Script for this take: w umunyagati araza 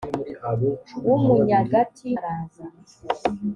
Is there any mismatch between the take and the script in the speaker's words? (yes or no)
no